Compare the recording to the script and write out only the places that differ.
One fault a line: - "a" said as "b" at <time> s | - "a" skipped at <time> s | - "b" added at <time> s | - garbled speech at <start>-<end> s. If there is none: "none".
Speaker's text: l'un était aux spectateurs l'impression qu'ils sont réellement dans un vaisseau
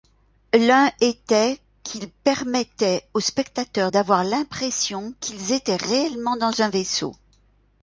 - "qu'il permettait" added at 1.8 s
- "d'avoir" added at 3.9 s
- "sont" said as "étaient" at 5.5 s